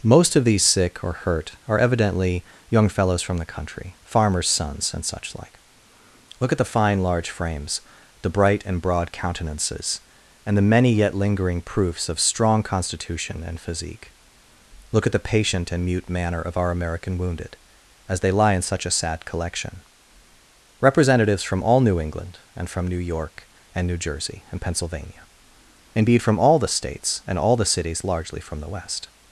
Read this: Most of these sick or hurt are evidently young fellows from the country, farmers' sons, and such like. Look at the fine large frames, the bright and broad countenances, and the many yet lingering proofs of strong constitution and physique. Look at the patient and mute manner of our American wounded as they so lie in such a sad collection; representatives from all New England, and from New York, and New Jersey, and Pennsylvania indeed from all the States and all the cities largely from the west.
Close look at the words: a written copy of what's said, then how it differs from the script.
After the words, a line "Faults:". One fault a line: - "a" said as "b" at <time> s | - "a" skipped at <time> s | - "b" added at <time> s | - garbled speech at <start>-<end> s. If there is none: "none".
Most of these sick or hurt are evidently young fellows from the country, farmers' sons, and such like. Look at the fine large frames, the bright and broad countenances, and the many yet lingering proofs of strong constitution and physique. Look at the patient and mute manner of our American wounded as they lie in such a sad collection; representatives from all New England, and from New York, and New Jersey, and Pennsylvania indeed from all the States and all the cities largely from the west.
Faults:
- "so" skipped at 18.3 s